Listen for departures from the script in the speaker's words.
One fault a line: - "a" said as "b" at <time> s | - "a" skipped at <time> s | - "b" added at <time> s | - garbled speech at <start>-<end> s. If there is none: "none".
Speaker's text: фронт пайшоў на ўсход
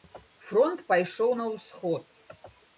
none